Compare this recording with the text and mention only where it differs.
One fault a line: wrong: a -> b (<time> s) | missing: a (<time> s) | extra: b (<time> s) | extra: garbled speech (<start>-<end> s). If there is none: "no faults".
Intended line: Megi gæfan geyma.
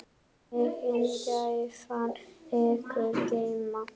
extra: ykkur (2.6 s)